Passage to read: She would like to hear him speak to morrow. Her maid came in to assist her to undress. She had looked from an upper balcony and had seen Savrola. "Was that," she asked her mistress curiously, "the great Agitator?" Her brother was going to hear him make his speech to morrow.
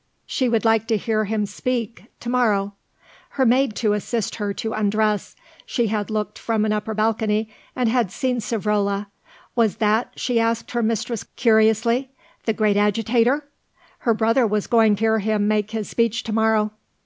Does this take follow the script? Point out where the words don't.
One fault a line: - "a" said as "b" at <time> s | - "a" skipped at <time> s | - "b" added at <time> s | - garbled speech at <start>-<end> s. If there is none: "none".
- "came in" skipped at 3.8 s
- "to" skipped at 14.9 s